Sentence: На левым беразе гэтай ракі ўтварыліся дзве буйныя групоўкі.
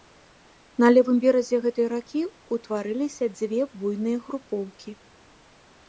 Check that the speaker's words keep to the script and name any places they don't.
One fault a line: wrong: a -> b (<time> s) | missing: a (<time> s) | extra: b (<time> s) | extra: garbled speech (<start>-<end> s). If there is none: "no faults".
no faults